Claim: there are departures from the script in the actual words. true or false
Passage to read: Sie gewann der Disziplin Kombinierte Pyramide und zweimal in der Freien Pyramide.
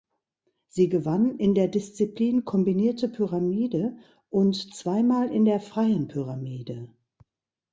true